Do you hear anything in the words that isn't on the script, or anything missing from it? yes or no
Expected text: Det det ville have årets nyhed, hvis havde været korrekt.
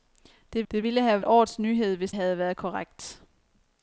no